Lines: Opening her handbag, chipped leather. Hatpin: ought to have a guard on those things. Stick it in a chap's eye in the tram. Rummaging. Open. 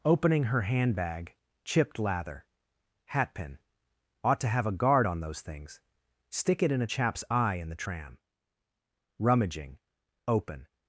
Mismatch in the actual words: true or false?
true